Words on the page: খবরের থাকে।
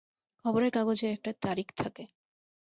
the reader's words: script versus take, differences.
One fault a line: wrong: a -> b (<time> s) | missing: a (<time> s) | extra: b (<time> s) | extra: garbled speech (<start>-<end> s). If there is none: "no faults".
extra: কাগজে একটা তারিখ (0.7 s)